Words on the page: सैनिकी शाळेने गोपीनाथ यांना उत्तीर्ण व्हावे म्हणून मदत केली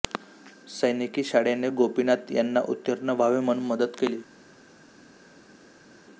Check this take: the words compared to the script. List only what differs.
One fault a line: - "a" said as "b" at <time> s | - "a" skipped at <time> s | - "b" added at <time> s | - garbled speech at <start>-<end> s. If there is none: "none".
none